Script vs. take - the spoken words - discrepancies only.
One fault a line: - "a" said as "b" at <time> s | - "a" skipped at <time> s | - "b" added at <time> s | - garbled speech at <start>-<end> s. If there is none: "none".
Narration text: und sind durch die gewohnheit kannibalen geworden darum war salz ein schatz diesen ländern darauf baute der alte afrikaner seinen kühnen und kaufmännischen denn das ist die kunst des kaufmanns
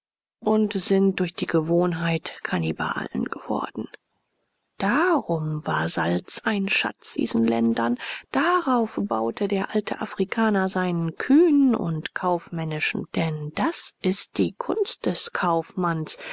none